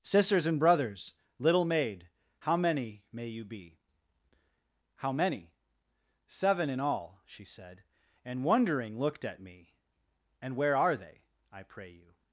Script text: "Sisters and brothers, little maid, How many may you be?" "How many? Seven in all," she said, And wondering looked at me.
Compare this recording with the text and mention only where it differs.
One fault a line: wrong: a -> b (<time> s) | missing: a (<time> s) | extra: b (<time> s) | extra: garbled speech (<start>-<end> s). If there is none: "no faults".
extra: And where are they I pray you (10.4 s)